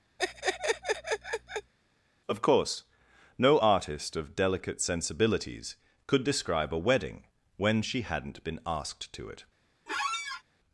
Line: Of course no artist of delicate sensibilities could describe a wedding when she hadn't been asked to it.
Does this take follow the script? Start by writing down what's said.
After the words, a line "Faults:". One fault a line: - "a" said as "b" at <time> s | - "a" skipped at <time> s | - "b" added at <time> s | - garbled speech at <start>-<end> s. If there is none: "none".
Of course no artist of delicate sensibilities could describe a wedding when she hadn't been asked to it.
Faults:
none